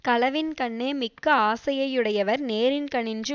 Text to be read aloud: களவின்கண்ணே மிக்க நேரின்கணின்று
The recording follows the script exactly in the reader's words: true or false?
false